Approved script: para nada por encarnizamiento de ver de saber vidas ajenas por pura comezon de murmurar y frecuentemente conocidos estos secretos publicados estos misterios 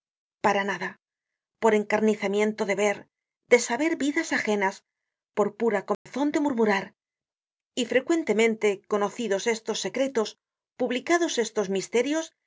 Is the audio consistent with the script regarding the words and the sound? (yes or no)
no